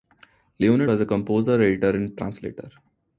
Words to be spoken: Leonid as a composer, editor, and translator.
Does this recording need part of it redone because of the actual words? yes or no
no